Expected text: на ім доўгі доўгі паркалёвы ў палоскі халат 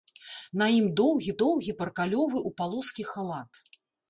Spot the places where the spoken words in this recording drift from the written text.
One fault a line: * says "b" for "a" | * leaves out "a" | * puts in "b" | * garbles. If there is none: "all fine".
all fine